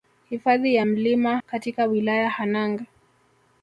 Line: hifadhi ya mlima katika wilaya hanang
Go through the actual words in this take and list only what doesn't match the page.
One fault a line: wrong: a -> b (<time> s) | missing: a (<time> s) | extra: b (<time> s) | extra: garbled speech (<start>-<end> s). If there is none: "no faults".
no faults